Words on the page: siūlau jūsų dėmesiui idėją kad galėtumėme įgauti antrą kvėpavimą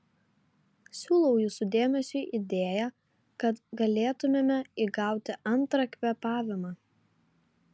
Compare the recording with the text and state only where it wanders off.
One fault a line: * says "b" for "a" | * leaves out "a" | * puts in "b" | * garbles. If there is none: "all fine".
all fine